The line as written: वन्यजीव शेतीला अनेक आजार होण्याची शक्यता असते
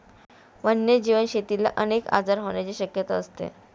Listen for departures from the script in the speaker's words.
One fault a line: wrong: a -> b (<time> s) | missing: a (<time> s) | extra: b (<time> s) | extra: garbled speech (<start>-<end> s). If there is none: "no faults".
no faults